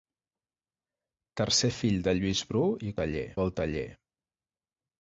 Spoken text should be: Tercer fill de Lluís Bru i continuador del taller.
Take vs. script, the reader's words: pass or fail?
fail